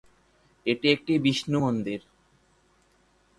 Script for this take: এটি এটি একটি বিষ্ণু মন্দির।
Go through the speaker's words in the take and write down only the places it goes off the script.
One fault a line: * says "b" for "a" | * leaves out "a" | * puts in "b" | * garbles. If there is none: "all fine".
* leaves out "এটি"